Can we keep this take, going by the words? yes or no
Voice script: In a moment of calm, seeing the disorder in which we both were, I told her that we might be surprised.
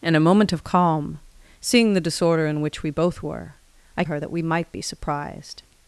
no